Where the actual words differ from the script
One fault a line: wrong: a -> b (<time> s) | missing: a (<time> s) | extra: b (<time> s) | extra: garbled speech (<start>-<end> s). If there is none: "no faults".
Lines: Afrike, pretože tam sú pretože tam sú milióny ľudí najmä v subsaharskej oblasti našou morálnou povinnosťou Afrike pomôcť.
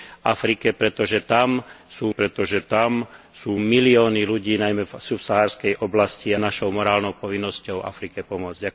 no faults